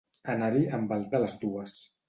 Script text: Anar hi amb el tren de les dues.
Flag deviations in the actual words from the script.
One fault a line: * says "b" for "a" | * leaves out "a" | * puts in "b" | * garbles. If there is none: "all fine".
* leaves out "tren"